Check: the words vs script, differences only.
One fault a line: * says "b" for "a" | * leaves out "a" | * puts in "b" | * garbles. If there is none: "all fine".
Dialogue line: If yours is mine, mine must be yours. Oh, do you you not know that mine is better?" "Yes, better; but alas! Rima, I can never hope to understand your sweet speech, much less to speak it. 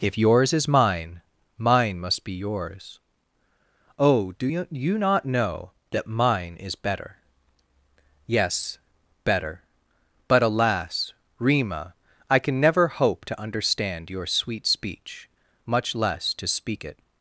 all fine